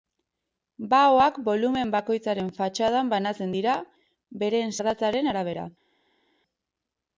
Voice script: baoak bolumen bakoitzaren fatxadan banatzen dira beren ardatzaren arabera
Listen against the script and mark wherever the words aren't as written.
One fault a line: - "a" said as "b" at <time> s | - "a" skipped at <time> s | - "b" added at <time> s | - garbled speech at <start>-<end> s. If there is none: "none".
none